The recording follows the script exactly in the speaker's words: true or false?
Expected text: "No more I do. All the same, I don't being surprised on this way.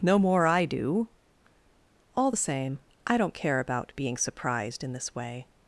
false